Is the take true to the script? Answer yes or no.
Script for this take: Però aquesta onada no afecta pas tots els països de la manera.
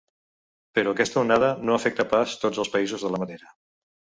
yes